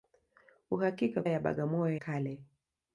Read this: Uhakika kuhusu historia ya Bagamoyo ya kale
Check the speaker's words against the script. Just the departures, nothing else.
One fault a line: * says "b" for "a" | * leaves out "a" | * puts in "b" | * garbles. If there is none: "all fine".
* leaves out "kuhusu historia"
* leaves out "ya"